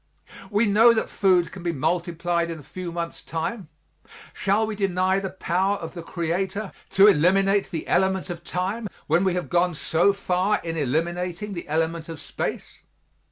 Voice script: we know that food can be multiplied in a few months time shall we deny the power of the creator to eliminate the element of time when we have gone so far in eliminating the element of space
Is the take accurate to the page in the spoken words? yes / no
yes